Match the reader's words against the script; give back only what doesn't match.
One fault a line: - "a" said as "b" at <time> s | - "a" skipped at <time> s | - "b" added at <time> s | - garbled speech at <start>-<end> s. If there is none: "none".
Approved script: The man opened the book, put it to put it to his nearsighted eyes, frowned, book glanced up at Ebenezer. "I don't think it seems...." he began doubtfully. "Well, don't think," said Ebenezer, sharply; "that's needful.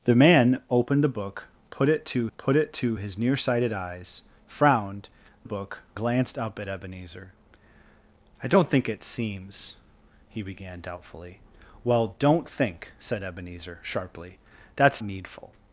none